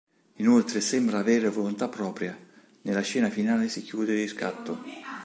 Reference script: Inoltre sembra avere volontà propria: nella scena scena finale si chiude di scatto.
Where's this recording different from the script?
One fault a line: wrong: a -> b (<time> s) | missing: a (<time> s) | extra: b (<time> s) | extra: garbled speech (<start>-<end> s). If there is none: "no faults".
missing: scena (3.3 s)